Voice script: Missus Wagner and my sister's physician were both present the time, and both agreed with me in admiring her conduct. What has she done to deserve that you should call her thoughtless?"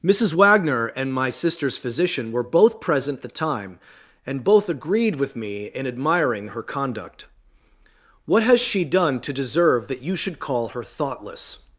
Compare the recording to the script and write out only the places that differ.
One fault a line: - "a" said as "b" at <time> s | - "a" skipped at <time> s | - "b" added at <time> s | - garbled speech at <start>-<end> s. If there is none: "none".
none